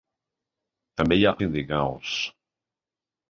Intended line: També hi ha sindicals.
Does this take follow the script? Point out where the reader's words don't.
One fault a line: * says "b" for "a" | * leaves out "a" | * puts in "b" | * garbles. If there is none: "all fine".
all fine